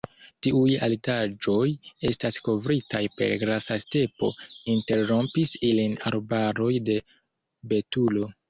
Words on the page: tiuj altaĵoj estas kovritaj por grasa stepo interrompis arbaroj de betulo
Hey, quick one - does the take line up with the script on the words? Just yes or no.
no